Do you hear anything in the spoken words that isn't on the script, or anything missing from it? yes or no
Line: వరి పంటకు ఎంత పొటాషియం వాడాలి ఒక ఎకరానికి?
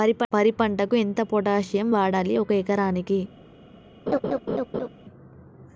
no